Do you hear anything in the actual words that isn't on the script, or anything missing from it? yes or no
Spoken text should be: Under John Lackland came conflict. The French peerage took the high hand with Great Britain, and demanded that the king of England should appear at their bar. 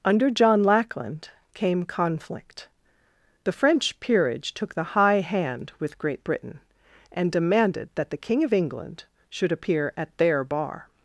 no